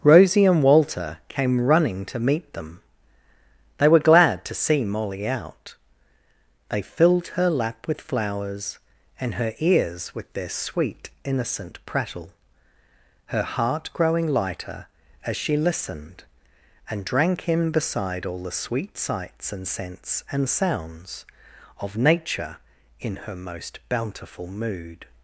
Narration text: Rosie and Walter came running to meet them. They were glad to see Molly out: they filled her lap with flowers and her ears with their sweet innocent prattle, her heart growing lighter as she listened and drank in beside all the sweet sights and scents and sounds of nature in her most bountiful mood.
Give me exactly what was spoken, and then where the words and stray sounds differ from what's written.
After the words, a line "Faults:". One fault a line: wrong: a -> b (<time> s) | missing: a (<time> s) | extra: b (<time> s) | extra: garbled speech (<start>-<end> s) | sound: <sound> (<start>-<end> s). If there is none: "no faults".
Rosie and Walter came running to meet them. They were glad to see Molly out: they filled her lap with flowers and her ears with their sweet innocent prattle, her heart growing lighter as she listened and drank in beside all the sweet sights and scents and sounds of nature in her most bountiful mood.
Faults:
no faults